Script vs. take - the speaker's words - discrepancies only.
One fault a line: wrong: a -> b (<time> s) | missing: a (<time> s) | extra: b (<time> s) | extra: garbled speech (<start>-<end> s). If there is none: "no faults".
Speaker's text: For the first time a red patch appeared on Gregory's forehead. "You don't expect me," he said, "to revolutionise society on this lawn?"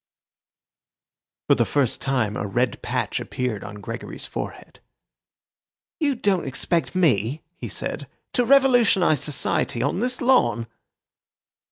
no faults